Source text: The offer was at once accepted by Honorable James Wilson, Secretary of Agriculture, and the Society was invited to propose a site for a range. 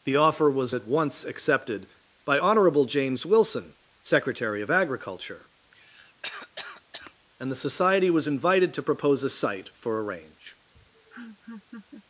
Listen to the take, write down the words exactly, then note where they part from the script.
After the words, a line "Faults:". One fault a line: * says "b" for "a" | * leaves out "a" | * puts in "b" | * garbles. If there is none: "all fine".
The offer was at once accepted by Honorable James Wilson, Secretary of Agriculture, and the Society was invited to propose a site for a range.
Faults:
all fine